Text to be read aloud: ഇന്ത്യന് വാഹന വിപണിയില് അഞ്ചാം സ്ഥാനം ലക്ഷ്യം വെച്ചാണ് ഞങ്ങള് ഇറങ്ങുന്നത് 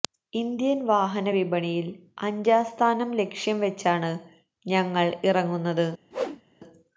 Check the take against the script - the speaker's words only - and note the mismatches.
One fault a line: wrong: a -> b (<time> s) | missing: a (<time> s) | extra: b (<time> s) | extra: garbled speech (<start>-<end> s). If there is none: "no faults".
no faults